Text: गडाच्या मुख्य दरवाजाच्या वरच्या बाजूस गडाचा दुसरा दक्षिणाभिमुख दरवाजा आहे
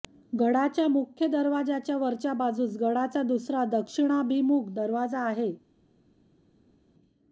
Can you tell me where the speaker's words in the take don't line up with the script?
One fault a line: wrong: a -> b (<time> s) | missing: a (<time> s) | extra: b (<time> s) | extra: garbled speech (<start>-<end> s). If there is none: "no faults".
no faults